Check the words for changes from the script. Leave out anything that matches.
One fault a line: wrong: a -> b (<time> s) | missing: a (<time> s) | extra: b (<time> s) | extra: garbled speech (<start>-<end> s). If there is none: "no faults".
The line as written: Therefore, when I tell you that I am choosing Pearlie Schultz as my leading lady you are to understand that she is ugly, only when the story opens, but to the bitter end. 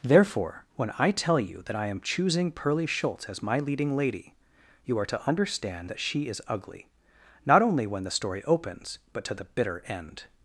extra: not (7.4 s)